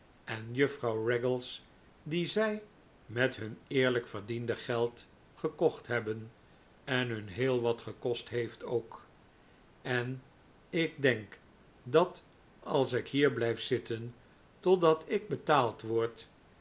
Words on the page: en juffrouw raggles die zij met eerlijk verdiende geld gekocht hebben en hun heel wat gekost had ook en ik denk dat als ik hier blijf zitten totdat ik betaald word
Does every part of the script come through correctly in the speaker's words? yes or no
no